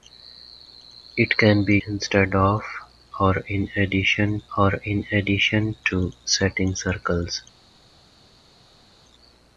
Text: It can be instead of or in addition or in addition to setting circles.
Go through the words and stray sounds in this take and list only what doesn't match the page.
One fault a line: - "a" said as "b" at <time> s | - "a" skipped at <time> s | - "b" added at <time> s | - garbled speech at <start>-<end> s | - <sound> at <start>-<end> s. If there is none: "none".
none